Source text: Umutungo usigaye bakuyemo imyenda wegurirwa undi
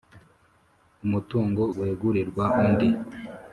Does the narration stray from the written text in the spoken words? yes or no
yes